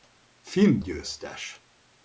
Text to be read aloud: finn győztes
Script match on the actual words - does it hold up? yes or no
yes